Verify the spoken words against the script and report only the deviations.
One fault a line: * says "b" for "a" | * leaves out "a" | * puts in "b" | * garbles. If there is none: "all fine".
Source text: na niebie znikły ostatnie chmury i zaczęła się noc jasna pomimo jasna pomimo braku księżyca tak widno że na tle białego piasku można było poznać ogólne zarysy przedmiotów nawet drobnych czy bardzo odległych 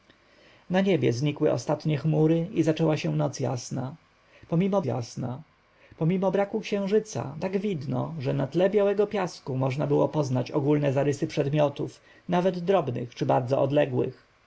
all fine